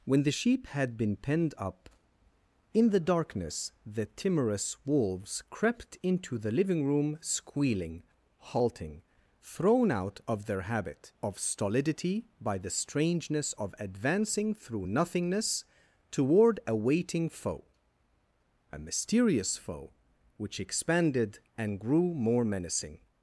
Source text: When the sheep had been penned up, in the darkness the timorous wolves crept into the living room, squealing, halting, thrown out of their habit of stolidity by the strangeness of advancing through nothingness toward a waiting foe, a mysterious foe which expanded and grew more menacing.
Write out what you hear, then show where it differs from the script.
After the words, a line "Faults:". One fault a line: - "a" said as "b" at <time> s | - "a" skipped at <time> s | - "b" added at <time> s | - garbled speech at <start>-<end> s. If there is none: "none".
When the sheep had been penned up, in the darkness the timorous wolves crept into the living room, squealing, halting, thrown out of their habit of stolidity by the strangeness of advancing through nothingness toward a waiting foe, a mysterious foe which expanded and grew more menacing.
Faults:
none